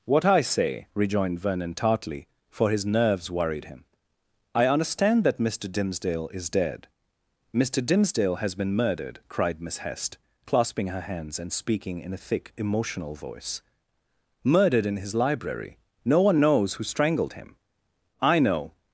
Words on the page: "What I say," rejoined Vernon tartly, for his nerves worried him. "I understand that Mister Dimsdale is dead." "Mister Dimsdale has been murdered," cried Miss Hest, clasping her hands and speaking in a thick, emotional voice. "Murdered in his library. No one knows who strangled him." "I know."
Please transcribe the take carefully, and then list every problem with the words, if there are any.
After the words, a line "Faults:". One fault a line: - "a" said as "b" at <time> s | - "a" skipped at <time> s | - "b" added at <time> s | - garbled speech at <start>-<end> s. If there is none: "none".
"What I say," rejoined Vernon tartly, for his nerves worried him. "I understand that Mister Dimsdale is dead." "Mister Dimsdale has been murdered," cried Miss Hest, clasping her hands and speaking in a thick, emotional voice. "Murdered in his library. No one knows who strangled him." "I know."
Faults:
none